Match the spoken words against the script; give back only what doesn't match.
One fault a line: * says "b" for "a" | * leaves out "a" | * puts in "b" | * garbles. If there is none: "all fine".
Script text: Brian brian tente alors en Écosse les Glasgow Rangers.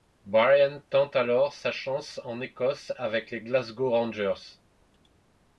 * leaves out "brian"
* puts in "sa chance"
* puts in "avec"